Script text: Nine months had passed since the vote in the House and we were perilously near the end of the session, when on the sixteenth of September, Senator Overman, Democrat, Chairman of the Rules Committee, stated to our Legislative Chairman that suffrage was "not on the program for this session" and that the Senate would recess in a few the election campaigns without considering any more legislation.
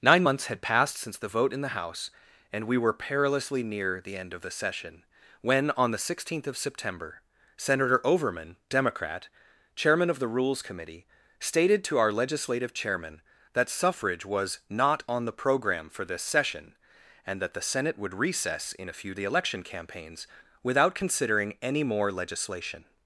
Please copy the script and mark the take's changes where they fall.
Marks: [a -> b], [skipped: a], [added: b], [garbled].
Nine months had passed since the vote in the House and we were perilously near the end of the session, when on the sixteenth of September, Senator Overman, Democrat, Chairman of the Rules Committee, stated to our Legislative Chairman that suffrage was "not on the program for this session" and that the Senate would recess in a few the election campaigns without considering any more legislation.